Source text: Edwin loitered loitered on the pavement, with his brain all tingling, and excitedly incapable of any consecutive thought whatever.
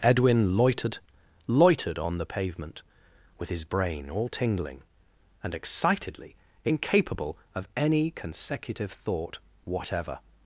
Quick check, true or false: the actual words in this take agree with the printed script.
true